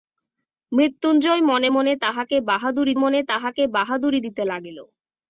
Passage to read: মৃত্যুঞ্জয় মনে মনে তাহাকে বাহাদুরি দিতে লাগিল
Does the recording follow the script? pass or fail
fail